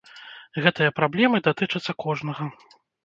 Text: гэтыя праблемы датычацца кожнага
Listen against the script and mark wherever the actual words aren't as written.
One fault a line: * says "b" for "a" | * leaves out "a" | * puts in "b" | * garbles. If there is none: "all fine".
all fine